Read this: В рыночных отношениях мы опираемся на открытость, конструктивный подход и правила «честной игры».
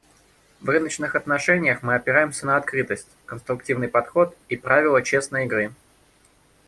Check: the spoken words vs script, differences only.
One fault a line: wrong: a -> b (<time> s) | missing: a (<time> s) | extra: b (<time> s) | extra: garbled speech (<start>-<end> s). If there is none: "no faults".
no faults